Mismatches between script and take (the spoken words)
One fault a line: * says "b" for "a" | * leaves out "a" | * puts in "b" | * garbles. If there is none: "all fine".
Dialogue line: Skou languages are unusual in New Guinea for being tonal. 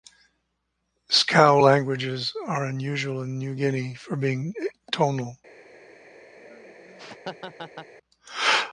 all fine